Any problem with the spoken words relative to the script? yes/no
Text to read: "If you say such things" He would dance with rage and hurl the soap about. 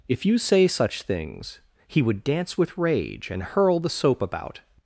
no